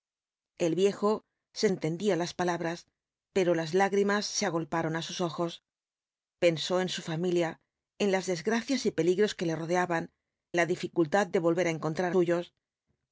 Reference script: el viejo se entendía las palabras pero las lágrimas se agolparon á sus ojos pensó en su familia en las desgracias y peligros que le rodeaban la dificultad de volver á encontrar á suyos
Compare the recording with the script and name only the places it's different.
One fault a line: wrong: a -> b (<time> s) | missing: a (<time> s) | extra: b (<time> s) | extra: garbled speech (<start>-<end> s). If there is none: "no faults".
no faults